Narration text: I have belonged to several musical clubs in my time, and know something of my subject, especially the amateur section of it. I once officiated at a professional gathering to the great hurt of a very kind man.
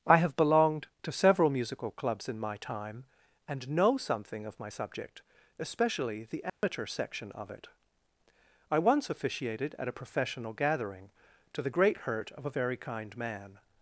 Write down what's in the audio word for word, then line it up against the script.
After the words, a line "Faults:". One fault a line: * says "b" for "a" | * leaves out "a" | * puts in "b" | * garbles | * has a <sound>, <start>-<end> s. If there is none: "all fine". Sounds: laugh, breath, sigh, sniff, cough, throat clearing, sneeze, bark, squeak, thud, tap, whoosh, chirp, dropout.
I have belonged to several musical clubs in my time, and know something of my subject, especially the amateur section of it. I once officiated at a professional gathering to the great hurt of a very kind man.
Faults:
* has a dropout, 6.5-6.6 s